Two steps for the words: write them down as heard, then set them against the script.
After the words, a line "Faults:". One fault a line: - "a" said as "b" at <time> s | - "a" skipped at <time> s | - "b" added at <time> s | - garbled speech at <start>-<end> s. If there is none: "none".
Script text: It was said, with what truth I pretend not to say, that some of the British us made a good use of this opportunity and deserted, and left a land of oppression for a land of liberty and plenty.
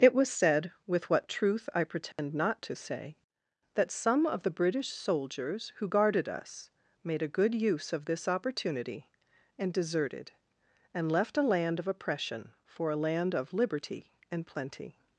It was said, with what truth I pretend not to say, that some of the British soldiers who guarded us made a good use of this opportunity and deserted, and left a land of oppression for a land of liberty and plenty.
Faults:
- "soldiers who guarded" added at 4.9 s